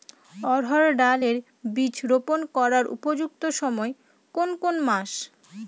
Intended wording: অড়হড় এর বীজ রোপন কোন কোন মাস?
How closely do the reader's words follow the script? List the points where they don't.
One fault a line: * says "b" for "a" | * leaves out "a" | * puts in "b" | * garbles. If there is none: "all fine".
* puts in "ডাল"
* puts in "করার উপযুক্ত সময়"